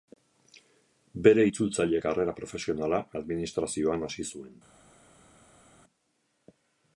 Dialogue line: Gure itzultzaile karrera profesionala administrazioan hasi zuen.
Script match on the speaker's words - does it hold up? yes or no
no